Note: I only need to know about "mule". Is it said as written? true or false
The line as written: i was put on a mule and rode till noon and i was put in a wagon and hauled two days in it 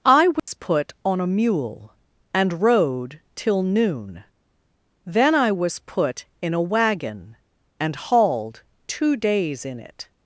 true